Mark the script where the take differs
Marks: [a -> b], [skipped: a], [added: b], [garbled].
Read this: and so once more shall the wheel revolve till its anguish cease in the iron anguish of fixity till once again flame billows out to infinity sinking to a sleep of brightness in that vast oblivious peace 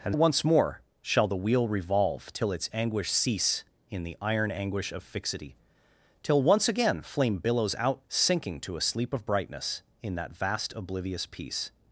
and [skipped: so] once more shall the wheel revolve till its anguish cease in the iron anguish of fixity till once again flame billows out [skipped: to infinity] sinking to a sleep of brightness in that vast oblivious peace